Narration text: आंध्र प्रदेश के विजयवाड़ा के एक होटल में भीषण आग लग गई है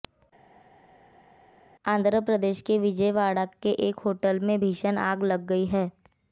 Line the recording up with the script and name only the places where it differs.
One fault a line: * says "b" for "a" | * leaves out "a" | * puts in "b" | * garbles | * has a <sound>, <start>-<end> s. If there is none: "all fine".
all fine